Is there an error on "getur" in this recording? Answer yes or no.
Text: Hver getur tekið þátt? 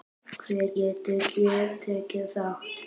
no